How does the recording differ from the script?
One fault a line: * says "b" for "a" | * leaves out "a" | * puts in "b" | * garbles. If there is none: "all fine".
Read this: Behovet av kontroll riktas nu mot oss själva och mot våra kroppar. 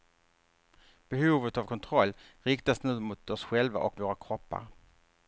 * leaves out "mot"